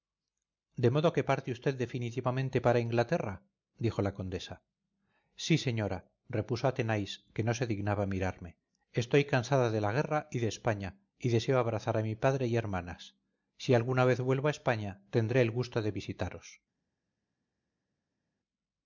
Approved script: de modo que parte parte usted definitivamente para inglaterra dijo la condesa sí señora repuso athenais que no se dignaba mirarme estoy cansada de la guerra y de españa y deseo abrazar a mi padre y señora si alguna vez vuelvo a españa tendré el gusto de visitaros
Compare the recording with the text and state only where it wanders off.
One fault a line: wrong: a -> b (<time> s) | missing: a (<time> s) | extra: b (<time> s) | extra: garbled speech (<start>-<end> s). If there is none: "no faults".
missing: parte (1.5 s)
wrong: señora -> hermanas (12.6 s)